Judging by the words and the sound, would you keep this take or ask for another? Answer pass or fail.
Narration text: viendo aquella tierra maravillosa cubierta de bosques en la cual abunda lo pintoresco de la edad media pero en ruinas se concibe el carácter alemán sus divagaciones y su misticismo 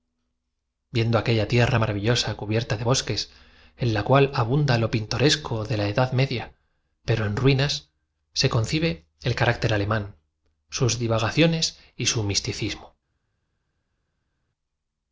pass